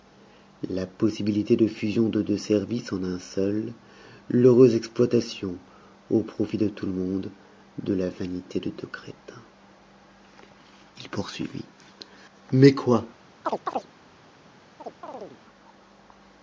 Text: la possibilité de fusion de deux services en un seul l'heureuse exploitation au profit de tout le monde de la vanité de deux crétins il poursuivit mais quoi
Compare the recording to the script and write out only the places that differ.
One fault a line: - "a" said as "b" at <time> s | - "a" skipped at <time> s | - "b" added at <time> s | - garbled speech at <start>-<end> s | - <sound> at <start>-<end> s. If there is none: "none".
- chirp at 13.4-13.9 s
- chirp at 14.8-15.4 s